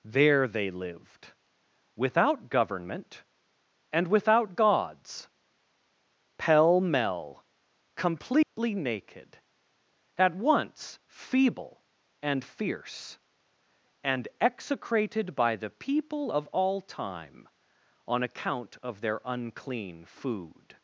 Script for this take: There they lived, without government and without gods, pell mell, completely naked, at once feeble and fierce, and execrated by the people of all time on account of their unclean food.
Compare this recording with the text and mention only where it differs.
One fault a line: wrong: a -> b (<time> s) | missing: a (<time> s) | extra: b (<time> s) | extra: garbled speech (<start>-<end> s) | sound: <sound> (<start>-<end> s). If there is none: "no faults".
sound: dropout (8.4-8.6 s)